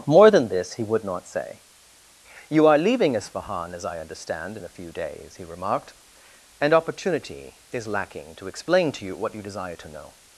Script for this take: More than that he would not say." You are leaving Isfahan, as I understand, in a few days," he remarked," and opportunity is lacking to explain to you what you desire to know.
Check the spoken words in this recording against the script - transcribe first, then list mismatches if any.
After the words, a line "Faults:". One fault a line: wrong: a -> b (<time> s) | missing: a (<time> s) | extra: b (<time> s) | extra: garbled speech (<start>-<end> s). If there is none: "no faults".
More than this he would not say." You are leaving Isfahan, as I understand, in a few days," he remarked," and opportunity is lacking to explain to you what you desire to know.
Faults:
wrong: that -> this (0.5 s)